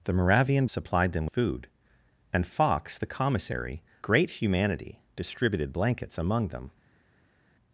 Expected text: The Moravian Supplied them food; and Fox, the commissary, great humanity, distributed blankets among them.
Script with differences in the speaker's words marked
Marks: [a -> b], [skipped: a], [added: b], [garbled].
The Moravian Supplied them food; and Fox, the commissary, great humanity, distributed blankets among them.